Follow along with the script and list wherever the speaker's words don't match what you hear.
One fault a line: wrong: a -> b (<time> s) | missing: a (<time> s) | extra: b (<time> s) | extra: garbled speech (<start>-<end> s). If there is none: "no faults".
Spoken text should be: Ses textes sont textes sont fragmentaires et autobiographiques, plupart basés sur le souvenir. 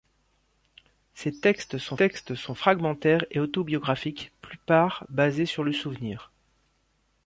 no faults